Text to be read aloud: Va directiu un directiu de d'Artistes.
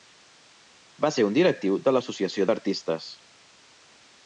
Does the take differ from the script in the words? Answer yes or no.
yes